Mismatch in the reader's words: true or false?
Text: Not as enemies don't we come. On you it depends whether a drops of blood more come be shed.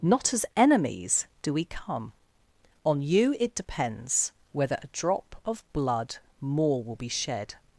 true